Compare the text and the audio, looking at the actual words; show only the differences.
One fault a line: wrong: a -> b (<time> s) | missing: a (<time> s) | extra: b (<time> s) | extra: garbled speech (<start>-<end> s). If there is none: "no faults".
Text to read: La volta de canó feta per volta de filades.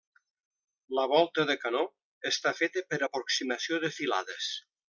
extra: està (2.3 s)
wrong: volta -> aproximació (3.1 s)